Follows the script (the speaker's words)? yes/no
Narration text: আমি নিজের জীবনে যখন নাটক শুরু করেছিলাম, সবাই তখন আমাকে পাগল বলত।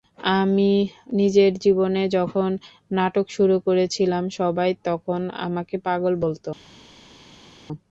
yes